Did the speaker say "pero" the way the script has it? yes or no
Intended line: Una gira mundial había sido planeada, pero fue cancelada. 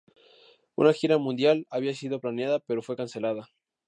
yes